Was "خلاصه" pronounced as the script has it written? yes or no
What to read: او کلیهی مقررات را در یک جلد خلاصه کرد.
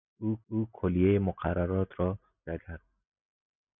no